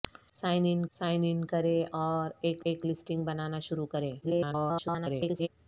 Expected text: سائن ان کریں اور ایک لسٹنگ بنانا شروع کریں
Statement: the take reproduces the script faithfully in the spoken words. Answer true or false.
false